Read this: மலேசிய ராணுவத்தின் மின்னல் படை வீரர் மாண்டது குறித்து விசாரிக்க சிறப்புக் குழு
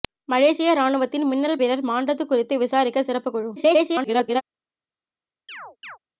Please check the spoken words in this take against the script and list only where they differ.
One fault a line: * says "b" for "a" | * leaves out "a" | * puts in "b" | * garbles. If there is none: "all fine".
* leaves out "படை"
* garbles